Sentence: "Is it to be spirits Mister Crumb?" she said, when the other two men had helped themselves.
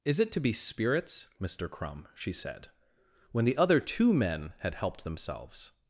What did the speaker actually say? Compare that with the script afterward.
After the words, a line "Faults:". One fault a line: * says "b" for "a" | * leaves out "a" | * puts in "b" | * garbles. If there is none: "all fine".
"Is it to be spirits Mister Crumb?" she said, when the other two men had helped themselves.
Faults:
all fine